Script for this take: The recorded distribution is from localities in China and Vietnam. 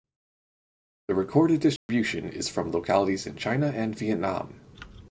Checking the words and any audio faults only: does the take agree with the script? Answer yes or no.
no